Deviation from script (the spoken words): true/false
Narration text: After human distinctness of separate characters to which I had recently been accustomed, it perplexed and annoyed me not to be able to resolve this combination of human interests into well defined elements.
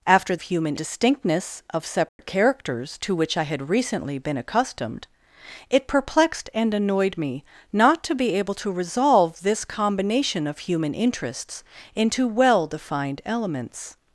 false